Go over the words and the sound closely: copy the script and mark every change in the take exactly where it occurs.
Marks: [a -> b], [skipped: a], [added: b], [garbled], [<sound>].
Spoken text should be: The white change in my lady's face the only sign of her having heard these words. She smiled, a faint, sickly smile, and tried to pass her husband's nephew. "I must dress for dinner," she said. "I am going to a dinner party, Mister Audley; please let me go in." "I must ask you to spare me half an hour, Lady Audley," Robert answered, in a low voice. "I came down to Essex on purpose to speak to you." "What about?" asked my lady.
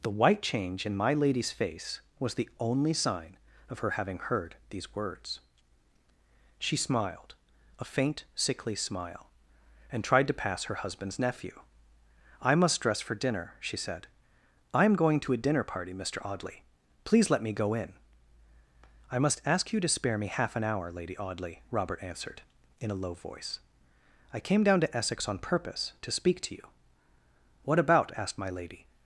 The white change in my lady's face [added: was] the only sign of her having heard these words. She smiled, a faint, sickly smile, and tried to pass her husband's nephew. "I must dress for dinner," she said. "I am going to a dinner party, Mister Audley; please let me go in." "I must ask you to spare me half an hour, Lady Audley," Robert answered, in a low voice. "I came down to Essex on purpose to speak to you." "What about?" asked my lady.